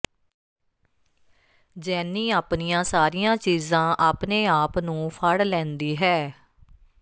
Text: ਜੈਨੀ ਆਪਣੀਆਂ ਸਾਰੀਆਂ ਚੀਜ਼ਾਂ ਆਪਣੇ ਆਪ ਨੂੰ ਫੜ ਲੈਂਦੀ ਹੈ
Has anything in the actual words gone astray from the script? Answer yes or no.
no